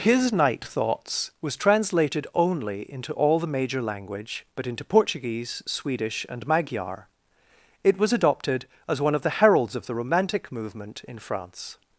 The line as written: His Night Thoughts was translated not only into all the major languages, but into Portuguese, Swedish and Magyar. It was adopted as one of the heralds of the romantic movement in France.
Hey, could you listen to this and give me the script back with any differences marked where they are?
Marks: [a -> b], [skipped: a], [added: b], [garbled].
His Night Thoughts was translated [skipped: not] only into all the major [languages, -> language] but into Portuguese, Swedish and Magyar. It was adopted as one of the heralds of the romantic movement in France.